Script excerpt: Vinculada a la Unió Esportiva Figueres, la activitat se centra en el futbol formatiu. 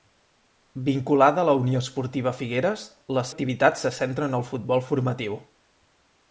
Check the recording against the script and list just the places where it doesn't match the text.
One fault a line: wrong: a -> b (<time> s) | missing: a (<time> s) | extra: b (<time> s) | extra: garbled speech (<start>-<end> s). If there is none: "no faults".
no faults